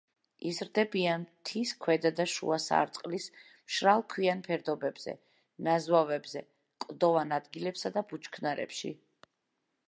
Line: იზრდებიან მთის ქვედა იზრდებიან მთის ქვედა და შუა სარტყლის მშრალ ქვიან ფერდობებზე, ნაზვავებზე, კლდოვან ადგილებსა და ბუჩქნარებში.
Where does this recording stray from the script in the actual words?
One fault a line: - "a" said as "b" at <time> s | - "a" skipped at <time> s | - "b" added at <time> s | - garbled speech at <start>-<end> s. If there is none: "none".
- "იზრდებიან მთის ქვედა" skipped at 2.1 s